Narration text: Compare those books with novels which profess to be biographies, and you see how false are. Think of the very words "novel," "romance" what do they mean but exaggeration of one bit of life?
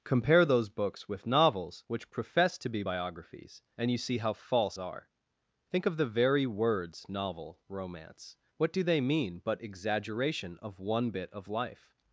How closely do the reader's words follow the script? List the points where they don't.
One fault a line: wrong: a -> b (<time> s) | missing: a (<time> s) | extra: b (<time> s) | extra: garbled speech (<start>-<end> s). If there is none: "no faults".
no faults